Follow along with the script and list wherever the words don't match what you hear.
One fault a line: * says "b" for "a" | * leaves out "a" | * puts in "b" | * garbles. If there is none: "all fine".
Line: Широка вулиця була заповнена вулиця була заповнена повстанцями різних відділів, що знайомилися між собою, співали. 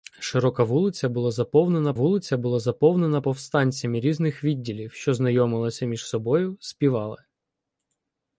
all fine